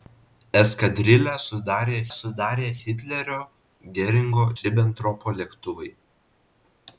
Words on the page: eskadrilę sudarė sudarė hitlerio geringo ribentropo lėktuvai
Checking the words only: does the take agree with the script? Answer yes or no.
yes